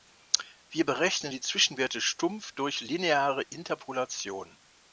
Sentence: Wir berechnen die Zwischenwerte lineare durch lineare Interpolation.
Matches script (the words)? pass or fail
fail